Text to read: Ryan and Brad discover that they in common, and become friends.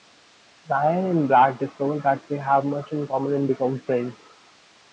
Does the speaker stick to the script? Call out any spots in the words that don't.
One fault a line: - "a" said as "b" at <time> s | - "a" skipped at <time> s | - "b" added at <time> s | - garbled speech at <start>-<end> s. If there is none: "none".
- "have much" added at 2.4 s